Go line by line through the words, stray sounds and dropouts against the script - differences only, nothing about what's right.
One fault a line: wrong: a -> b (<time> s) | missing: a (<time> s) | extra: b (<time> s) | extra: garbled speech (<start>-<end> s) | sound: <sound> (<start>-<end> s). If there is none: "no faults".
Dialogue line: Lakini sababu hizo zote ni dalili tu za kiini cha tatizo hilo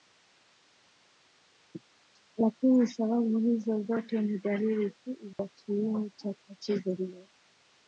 sound: dropout (5.3-5.4 s)